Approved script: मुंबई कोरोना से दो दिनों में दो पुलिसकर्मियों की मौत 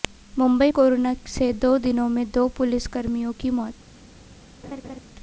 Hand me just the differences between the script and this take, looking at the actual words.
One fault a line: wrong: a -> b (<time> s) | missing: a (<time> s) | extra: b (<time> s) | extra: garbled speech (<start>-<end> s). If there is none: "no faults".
no faults